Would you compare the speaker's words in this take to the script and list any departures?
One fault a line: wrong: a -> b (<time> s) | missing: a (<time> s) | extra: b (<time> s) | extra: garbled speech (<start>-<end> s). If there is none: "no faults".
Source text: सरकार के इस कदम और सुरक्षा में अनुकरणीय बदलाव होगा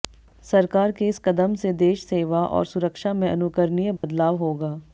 extra: से देश सेवा (1.6 s)